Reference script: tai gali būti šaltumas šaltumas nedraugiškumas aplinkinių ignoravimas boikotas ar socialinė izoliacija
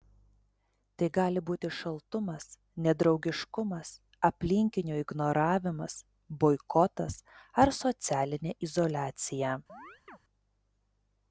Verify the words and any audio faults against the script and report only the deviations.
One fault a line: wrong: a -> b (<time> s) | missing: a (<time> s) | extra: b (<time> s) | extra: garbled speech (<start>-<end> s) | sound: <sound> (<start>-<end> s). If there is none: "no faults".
missing: šaltumas (2.5 s)
sound: chirp (9.7-10.2 s)